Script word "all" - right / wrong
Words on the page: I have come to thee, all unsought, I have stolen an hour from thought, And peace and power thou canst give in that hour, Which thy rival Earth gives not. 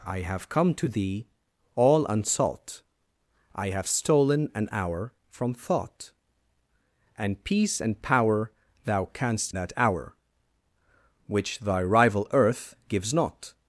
right